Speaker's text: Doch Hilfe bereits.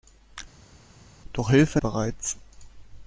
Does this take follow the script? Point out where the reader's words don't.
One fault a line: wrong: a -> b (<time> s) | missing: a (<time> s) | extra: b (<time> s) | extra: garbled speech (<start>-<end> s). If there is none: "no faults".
no faults